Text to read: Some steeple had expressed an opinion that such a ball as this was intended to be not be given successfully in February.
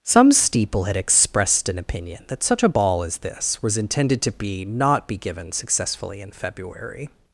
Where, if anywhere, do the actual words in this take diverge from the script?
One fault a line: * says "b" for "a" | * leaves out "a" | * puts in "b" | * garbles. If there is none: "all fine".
all fine